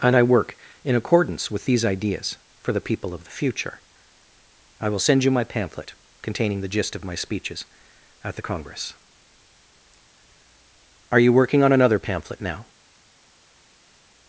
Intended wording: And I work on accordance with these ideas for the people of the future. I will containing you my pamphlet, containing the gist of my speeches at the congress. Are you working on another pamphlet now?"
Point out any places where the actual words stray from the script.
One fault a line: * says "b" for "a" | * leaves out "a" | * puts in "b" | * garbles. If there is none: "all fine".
* says "in" for "on"
* says "send" for "containing"